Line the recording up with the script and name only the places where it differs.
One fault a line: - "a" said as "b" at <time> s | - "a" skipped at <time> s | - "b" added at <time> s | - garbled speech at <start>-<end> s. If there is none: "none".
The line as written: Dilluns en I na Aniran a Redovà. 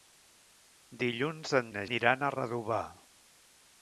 none